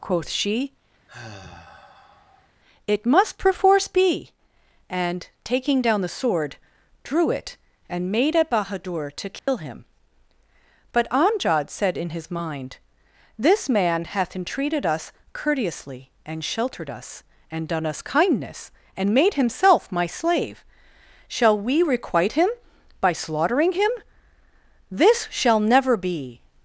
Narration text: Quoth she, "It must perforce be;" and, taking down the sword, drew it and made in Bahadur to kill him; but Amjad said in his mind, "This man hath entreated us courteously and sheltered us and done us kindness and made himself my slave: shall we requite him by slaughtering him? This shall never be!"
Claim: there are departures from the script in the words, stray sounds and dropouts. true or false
true